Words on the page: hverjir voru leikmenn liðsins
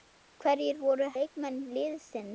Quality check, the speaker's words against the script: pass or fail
pass